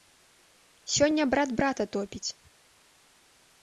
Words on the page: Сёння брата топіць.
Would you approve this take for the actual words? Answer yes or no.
no